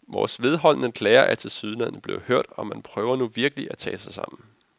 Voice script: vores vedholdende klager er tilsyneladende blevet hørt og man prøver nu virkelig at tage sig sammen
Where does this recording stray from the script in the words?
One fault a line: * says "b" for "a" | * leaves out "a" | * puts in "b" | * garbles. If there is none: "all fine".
all fine